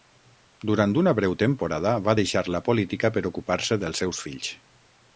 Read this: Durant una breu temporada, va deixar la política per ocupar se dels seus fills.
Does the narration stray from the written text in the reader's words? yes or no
no